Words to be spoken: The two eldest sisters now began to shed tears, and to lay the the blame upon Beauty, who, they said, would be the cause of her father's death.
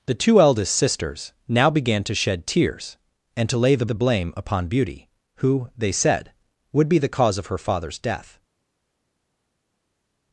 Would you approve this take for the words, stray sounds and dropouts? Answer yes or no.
yes